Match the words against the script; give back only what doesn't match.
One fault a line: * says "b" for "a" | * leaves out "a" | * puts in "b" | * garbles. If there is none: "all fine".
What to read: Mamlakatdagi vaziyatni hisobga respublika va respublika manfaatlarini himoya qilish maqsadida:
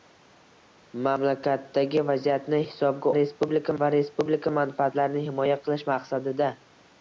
all fine